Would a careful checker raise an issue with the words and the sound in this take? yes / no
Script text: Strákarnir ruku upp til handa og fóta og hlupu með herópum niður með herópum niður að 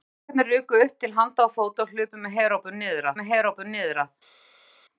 no